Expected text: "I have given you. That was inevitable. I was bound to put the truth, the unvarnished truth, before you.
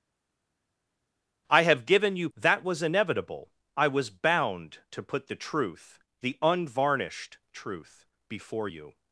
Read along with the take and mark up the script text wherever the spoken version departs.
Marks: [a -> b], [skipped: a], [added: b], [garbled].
"I have given you. That was inevitable. I was bound to put the truth, the unvarnished truth, before you.